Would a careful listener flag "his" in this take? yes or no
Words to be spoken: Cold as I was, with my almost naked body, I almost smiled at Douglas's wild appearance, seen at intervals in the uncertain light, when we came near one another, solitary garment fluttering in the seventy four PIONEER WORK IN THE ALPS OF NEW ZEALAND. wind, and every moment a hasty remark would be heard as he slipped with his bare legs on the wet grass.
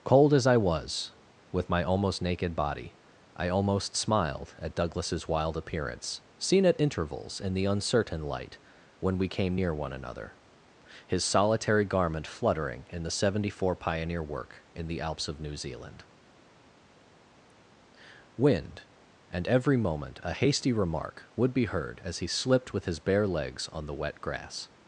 no